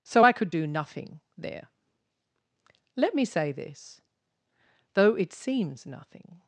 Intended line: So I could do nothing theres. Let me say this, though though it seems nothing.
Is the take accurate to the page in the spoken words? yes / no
no